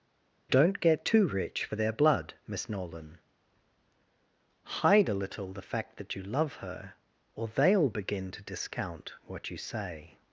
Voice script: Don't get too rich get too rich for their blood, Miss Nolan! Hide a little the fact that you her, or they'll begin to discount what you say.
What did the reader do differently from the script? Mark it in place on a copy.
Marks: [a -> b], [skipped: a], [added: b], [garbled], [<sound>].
Don't get too rich [skipped: get too rich] for their blood, Miss Nolan! Hide a little the fact that you [added: love] her, or they'll begin to discount what you say.